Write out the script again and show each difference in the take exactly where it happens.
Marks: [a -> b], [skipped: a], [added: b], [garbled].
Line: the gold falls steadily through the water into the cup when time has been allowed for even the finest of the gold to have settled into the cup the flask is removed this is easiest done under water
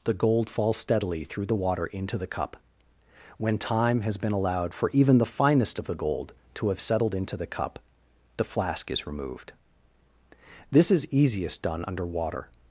the gold falls steadily through the water into the cup when time has been allowed for even the finest of the gold to have settled into the cup the flask is removed this is easiest done under water